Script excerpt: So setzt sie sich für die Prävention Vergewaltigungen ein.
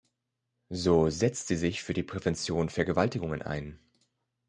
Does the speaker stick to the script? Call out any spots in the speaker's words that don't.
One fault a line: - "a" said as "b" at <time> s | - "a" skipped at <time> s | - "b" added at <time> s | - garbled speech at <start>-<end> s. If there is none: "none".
none